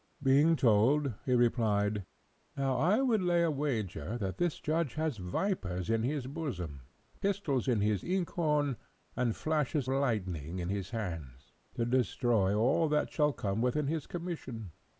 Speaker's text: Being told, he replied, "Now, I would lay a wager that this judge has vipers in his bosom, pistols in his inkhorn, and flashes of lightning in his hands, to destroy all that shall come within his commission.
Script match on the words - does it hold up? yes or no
no